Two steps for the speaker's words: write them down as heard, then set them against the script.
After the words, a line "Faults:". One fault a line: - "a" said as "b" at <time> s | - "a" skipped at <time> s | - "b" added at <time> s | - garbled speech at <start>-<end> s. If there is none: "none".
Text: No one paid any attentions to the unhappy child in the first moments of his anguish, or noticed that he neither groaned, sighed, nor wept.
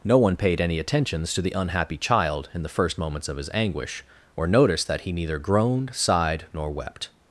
No one paid any attentions to the unhappy child in the first moments of his anguish, or noticed that he neither groaned, sighed, nor wept.
Faults:
none